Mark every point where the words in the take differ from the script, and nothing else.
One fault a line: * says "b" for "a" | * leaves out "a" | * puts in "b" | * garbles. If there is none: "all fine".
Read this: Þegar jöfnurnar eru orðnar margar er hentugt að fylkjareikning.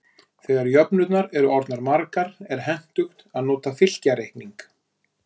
* puts in "nota"